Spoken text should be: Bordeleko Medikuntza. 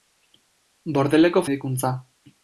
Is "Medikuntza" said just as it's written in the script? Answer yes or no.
yes